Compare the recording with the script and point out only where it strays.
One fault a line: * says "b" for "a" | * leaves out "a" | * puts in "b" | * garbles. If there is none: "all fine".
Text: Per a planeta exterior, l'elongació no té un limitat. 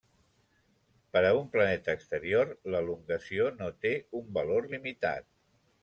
* puts in "un"
* puts in "valor"